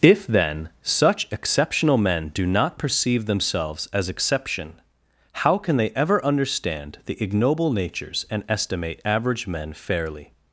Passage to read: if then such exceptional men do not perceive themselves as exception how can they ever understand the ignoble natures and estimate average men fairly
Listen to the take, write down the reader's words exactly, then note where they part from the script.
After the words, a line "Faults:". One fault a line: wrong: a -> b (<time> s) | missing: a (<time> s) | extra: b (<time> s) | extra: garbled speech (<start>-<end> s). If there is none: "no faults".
if then such exceptional men do not perceive themselves as exception how can they ever understand the ignoble natures and estimate average men fairly
Faults:
no faults